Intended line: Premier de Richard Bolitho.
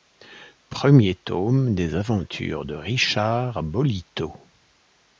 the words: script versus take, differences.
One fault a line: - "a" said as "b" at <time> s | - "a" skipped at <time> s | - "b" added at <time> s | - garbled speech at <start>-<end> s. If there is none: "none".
- "tome des aventures" added at 1.1 s